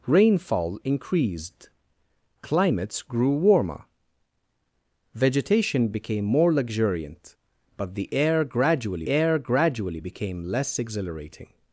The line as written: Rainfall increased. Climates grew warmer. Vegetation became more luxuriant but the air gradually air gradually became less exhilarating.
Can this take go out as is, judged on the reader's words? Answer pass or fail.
pass